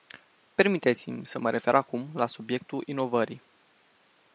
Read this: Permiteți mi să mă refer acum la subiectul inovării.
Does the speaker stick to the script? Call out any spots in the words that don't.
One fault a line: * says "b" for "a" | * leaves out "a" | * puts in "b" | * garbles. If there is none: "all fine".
all fine